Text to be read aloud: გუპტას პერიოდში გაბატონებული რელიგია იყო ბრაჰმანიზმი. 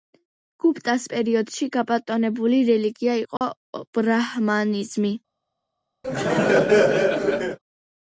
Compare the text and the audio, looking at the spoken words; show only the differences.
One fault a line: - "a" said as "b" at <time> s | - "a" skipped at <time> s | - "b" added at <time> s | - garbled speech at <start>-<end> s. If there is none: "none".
none